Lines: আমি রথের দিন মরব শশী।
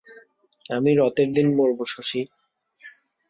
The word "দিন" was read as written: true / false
true